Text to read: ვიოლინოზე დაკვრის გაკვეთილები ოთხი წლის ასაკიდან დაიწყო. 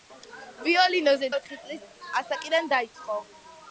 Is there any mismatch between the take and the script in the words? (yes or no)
yes